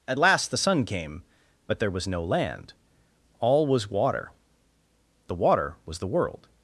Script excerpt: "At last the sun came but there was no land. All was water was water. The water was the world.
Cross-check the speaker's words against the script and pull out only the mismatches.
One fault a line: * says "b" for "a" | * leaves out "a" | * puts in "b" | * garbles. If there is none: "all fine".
* leaves out "was water"